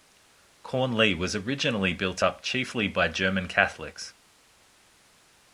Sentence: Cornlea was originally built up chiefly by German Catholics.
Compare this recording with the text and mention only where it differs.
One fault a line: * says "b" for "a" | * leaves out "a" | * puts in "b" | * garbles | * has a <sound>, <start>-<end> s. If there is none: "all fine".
all fine